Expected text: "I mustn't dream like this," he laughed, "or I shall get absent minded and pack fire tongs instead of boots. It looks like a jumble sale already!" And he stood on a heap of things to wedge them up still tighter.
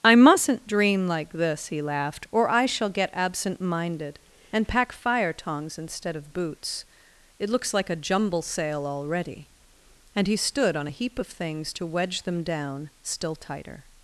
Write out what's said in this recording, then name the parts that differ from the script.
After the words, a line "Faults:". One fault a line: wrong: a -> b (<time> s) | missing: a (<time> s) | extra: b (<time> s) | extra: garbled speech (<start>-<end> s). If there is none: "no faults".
"I mustn't dream like this," he laughed, "or I shall get absent minded and pack fire tongs instead of boots. It looks like a jumble sale already!" And he stood on a heap of things to wedge them down still tighter.
Faults:
wrong: up -> down (12.4 s)